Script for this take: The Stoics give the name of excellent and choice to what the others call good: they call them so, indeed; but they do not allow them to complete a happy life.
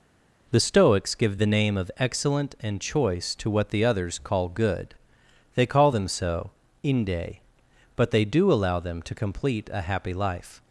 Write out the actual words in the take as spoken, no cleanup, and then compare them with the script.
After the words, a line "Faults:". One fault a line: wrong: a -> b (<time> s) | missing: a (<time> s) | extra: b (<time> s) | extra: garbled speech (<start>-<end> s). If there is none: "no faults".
The Stoics give the name of excellent and choice to what the others call good: they call them so, inde; but they do allow them to complete a happy life.
Faults:
wrong: indeed -> inde (6.8 s)
missing: not (8.5 s)